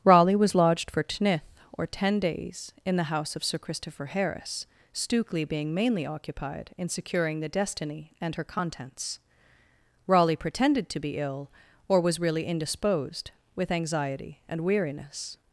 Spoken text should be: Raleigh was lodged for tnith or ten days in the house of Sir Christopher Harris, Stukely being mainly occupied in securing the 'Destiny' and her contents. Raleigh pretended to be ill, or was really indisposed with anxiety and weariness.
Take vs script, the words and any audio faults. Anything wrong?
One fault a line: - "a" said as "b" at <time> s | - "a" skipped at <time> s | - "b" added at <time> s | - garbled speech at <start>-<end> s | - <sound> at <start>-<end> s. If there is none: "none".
none